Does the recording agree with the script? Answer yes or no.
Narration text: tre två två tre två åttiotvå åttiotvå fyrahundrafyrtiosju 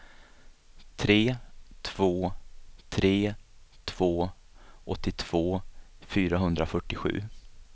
no